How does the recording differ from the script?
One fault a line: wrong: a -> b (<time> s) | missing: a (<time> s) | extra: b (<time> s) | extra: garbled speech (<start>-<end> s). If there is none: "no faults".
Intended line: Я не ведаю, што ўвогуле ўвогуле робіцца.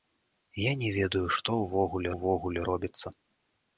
no faults